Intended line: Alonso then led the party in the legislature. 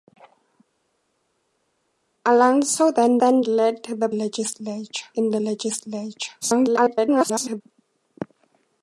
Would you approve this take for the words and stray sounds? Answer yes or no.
no